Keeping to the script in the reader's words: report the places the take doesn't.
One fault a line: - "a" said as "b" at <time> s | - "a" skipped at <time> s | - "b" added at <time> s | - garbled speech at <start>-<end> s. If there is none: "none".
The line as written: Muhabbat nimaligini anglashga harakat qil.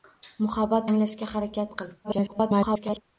- "nimaligini" skipped at 0.9 s
- garbled speech at 2.0-3.0 s